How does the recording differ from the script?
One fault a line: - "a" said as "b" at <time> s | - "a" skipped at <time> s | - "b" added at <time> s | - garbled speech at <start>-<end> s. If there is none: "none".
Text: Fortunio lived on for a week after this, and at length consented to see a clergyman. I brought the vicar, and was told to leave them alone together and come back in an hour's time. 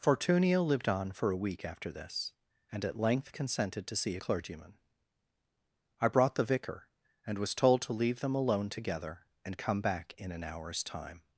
none